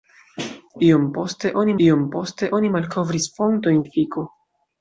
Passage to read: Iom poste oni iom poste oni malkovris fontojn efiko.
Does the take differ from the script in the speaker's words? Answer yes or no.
no